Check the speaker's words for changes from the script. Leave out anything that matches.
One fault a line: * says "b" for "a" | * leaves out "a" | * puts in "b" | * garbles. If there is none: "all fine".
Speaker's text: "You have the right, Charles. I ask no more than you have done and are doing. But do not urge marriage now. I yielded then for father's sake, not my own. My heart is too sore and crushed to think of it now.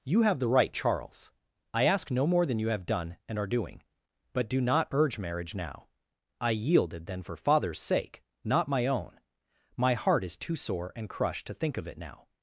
all fine